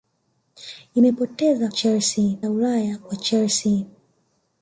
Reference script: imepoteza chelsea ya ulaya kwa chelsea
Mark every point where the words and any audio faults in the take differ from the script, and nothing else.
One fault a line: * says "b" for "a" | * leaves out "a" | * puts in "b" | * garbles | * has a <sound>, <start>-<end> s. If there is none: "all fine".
all fine